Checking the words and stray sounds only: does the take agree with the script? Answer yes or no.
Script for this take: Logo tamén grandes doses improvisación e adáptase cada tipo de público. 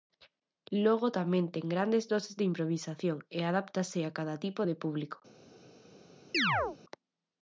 no